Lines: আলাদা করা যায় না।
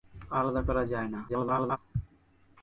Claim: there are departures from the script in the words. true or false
true